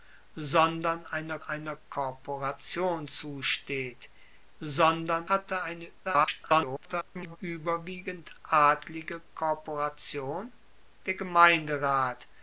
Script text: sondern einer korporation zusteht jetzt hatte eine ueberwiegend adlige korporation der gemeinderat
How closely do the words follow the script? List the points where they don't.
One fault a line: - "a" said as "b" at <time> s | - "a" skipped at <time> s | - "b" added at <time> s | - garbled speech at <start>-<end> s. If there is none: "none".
- "einer" added at 1.4 s
- "jetzt" said as "sondern" at 4.6 s
- garbled speech at 6.0-7.4 s